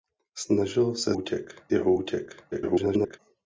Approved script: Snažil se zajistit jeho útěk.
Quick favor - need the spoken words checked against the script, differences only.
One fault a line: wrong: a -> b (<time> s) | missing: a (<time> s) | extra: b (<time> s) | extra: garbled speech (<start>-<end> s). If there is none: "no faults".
wrong: zajistit -> útěk (1.1 s)
extra: garbled speech (2.5-3.2 s)